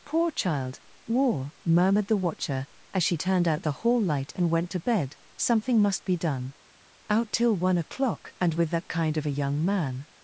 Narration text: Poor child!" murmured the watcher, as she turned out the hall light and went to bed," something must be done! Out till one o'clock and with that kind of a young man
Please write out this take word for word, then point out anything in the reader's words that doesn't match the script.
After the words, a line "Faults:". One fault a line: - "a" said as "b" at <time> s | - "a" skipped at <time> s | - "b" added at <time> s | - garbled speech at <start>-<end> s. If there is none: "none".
Poor child!" war murmured the watcher, as she turned out the hall light and went to bed," something must be done! Out till one o'clock and with that kind of a young man
Faults:
- "war" added at 1.1 s